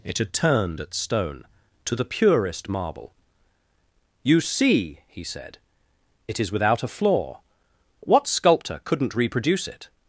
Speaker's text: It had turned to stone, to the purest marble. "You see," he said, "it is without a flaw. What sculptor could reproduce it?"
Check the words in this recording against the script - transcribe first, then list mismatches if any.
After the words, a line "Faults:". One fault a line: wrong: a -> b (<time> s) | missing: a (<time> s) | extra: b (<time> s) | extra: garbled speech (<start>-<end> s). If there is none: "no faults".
It had turned at stone, to the purest marble. "You see," he said, "it is without a flaw. What sculptor couldn't reproduce it?"
Faults:
wrong: to -> at (0.8 s)
wrong: could -> couldn't (8.8 s)